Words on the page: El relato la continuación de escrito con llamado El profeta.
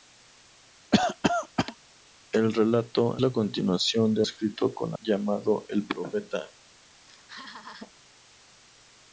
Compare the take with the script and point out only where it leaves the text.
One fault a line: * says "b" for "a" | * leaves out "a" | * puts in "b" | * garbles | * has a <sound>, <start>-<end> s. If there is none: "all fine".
* has a cough, 0.9-1.8 s
* has a laugh, 7.0-7.9 s